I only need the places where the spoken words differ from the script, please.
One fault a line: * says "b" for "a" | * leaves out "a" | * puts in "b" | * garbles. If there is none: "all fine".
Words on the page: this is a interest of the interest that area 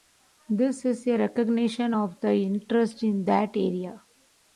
* says "recognition" for "interest"
* puts in "in"